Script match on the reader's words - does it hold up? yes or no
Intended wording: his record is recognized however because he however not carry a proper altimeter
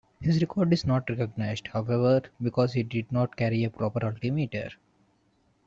no